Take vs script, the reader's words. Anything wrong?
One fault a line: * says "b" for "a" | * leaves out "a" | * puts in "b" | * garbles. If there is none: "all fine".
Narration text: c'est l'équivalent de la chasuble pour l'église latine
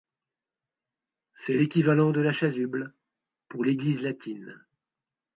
all fine